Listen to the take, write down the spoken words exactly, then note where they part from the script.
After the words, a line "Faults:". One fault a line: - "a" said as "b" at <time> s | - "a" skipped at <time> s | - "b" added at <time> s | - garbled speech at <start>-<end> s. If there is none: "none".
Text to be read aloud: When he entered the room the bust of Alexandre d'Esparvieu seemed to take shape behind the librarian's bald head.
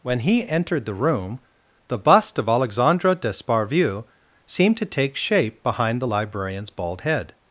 When he entered the room the bust of Alexandre d'Esparvieu seemed to take shape behind the librarian's bald head.
Faults:
none